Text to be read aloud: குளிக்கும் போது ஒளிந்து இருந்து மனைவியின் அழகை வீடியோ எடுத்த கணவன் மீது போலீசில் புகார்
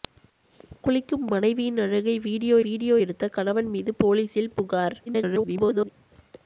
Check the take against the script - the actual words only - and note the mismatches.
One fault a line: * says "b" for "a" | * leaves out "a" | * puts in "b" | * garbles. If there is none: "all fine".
* leaves out "போது ஒளிந்து இருந்து"
* puts in "வீடியோ"
* garbles